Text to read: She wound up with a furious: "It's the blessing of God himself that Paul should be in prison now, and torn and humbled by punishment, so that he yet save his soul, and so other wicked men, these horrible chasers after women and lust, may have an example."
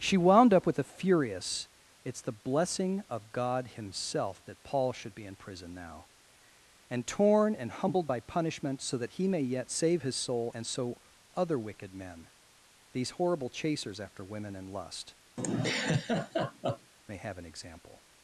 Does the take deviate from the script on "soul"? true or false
false